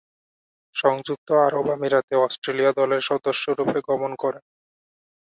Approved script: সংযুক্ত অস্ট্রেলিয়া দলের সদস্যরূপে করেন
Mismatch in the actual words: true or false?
true